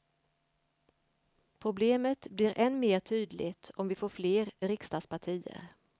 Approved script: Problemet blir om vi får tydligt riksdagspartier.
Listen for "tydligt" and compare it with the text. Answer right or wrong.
wrong